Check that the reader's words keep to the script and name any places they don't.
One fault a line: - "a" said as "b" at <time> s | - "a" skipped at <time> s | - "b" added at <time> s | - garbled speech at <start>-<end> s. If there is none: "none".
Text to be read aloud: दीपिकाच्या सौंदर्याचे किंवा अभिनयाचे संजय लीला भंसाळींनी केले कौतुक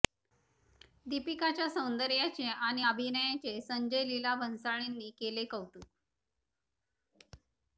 - "किंवा" said as "आणि" at 2.4 s